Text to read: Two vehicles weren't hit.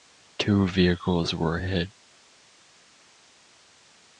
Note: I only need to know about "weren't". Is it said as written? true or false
false